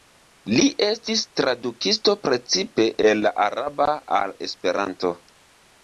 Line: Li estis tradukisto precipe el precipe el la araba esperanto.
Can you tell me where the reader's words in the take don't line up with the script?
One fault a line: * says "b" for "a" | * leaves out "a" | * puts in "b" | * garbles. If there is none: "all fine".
* leaves out "precipe el"
* puts in "al"